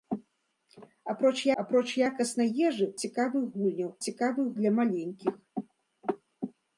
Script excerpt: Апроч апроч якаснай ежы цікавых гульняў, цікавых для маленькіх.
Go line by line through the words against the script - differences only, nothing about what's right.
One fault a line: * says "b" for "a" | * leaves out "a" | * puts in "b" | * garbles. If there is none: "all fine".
all fine